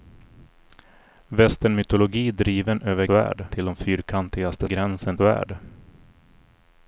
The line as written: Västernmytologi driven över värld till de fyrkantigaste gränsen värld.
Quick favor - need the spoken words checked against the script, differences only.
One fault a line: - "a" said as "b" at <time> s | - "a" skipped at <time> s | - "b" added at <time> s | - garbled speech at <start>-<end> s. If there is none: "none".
none